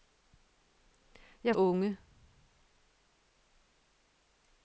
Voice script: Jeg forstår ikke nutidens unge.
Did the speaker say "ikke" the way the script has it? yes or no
no